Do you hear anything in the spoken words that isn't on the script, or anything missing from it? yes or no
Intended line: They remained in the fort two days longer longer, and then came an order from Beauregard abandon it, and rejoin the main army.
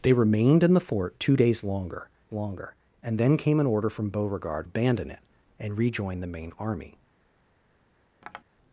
no